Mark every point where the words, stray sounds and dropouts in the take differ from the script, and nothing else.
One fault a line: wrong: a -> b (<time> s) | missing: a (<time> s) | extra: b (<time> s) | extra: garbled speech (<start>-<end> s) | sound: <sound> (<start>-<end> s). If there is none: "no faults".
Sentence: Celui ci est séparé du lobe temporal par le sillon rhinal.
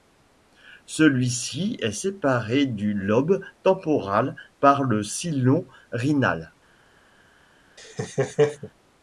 sound: laugh (7.8-8.7 s)